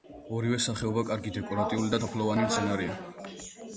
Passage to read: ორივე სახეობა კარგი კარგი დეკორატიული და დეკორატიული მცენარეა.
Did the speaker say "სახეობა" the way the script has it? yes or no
yes